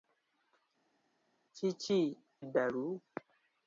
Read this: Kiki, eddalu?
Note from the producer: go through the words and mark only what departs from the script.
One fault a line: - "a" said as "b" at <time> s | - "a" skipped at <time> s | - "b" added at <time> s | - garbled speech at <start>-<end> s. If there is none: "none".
none